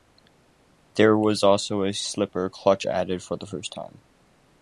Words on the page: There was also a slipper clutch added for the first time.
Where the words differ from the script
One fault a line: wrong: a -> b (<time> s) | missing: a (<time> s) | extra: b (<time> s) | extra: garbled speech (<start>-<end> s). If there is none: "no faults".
no faults